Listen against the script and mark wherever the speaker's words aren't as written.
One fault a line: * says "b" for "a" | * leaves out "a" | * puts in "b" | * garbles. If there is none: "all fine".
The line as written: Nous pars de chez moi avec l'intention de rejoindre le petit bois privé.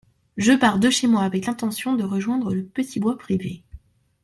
* says "Je" for "Nous"